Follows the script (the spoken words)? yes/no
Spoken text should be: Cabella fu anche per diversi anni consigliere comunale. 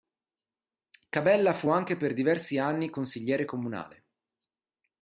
yes